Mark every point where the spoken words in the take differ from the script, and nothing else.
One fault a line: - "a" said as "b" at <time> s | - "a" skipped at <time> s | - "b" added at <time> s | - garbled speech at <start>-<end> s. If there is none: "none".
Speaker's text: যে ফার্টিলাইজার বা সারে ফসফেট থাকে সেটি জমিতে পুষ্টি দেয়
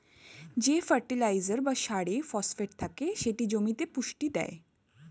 none